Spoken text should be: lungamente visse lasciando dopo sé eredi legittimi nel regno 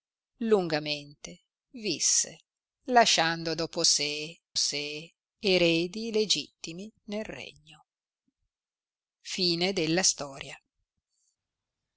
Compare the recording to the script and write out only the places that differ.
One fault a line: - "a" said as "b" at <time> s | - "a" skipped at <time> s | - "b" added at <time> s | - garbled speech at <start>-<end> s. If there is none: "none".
- "sé" added at 4.5 s